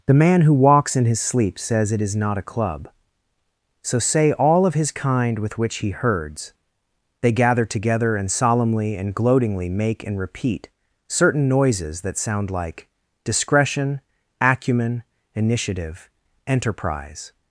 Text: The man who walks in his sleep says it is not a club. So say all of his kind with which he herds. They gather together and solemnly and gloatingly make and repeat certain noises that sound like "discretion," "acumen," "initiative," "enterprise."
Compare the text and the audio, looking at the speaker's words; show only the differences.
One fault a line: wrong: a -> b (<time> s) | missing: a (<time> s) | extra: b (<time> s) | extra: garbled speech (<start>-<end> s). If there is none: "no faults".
no faults